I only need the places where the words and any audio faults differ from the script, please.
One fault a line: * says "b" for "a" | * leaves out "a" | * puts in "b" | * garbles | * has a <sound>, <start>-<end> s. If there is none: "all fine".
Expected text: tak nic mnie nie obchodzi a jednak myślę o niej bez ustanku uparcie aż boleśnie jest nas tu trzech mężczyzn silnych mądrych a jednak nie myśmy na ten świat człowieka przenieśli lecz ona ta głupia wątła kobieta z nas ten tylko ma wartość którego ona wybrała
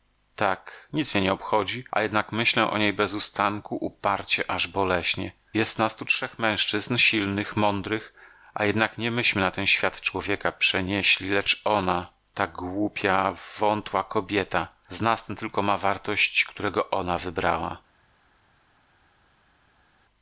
all fine